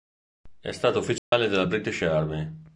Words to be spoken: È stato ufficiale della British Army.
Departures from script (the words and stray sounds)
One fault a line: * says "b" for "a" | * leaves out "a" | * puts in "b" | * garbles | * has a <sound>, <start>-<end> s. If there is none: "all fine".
* has a dropout, 1.2-1.3 s